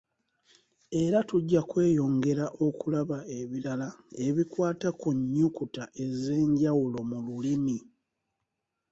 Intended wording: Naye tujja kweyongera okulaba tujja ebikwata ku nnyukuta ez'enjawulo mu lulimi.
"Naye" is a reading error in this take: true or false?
true